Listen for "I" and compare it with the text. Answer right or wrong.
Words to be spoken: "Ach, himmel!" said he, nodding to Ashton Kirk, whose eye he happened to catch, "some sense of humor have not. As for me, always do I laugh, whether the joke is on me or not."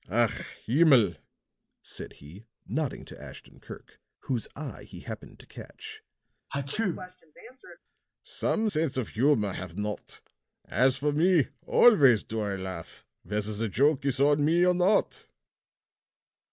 right